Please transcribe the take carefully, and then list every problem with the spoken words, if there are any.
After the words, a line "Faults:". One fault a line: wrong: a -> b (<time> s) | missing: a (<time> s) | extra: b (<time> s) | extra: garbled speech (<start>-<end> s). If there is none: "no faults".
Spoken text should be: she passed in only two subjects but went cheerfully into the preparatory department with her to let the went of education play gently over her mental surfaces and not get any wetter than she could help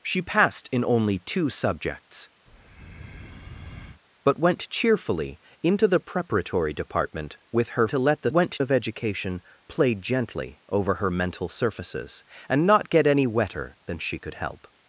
she passed in only two subjects but went cheerfully into the preparatory department with her to let the went of education play gently over her mental surfaces and not get any wetter than she could help
Faults:
no faults